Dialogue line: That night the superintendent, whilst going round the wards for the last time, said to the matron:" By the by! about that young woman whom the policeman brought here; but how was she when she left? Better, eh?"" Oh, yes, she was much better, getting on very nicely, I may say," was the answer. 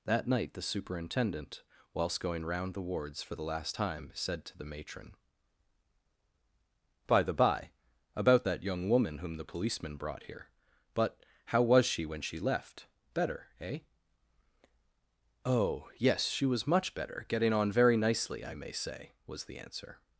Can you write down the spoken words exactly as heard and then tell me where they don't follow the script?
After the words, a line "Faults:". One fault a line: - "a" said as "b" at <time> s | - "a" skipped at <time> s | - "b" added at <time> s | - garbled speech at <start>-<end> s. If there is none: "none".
That night the superintendent, whilst going round the wards for the last time, said to the matron:" By the by! about that young woman whom the policeman brought here; but how was she when she left? Better, eh?"" Oh, yes, she was much better, getting on very nicely, I may say," was the answer.
Faults:
none